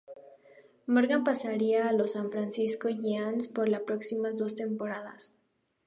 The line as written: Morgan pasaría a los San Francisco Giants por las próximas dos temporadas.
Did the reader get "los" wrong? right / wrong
right